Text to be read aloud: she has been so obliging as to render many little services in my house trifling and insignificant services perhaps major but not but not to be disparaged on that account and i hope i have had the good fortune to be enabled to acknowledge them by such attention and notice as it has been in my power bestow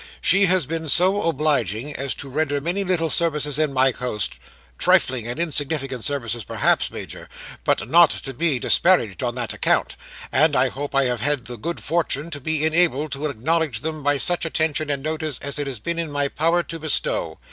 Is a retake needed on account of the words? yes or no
yes